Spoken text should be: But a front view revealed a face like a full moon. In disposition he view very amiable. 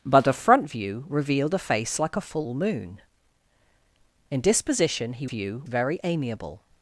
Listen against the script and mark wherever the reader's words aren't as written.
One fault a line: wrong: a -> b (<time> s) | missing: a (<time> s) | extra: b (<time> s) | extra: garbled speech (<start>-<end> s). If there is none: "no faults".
no faults